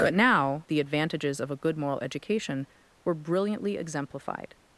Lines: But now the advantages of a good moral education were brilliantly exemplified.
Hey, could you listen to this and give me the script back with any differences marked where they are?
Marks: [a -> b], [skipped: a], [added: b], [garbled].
But now the advantages of a good moral education were brilliantly exemplified.